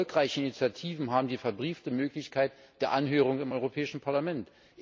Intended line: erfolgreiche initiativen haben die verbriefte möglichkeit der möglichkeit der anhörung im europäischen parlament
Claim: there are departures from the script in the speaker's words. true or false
true